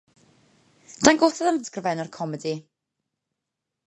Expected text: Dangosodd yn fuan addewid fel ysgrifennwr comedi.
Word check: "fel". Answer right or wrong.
wrong